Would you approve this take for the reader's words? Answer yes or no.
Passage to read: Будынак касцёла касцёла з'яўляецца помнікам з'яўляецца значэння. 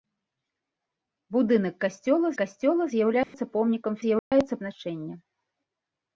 yes